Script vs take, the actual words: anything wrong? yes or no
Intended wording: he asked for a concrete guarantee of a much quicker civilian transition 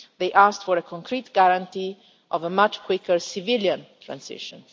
yes